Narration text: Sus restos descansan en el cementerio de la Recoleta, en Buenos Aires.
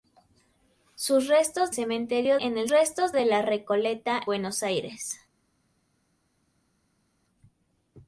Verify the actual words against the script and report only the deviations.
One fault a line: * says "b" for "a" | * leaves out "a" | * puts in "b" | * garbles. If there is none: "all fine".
* says "cementerio" for "descansan"
* says "restos" for "cementerio"
* leaves out "en"